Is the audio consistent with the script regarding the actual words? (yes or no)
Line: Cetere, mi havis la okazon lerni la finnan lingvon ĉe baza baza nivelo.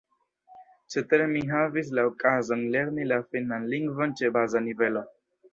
no